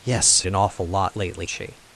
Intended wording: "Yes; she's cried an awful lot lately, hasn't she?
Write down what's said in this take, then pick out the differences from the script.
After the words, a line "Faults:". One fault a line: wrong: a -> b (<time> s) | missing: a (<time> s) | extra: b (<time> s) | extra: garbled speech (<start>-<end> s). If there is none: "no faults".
"Yes; an awful lot lately, she?
Faults:
missing: she's cried (0.4 s)
missing: hasn't (1.5 s)